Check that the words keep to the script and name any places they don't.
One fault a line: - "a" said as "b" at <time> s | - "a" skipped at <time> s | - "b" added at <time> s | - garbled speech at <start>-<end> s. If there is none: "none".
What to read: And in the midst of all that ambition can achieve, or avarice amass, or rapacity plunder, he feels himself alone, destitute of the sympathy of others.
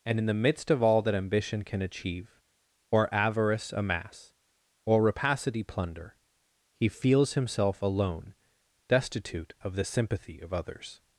none